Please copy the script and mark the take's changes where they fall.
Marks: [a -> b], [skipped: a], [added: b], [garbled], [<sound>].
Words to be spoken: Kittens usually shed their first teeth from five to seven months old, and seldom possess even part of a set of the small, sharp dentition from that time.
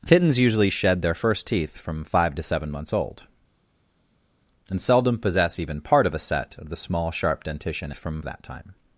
Kittens usually shed their first teeth from five to seven months old, and seldom possess even part of a set of the small, sharp dentition from that time.